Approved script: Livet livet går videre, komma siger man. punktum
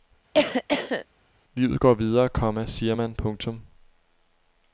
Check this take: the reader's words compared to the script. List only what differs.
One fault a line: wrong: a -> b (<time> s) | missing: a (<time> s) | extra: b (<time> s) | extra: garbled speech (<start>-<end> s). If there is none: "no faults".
missing: livet (1.8 s)